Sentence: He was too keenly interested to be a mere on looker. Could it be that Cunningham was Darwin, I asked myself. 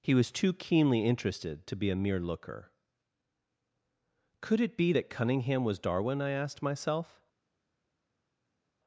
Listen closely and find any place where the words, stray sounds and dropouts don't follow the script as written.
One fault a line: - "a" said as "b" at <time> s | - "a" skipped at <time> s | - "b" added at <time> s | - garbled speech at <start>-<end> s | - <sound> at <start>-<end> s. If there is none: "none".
- "on" skipped at 2.2 s